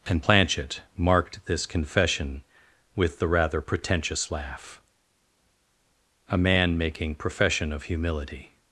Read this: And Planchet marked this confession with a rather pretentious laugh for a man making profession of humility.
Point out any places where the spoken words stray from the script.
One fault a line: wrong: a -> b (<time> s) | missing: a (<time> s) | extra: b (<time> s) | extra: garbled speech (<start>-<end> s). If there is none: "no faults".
wrong: a -> the (3.2 s)
missing: for (4.8 s)